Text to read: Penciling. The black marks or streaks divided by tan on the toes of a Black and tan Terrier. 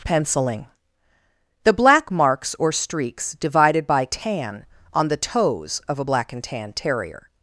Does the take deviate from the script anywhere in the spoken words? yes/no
no